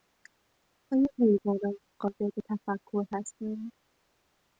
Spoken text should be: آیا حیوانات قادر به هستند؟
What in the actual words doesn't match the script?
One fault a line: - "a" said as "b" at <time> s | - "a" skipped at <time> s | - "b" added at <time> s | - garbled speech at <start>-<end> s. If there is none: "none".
- "تفکر" added at 2.5 s